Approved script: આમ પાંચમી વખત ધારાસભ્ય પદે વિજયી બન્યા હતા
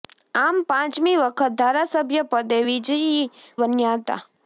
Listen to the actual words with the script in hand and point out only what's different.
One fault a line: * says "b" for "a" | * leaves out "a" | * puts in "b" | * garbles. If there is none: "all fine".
all fine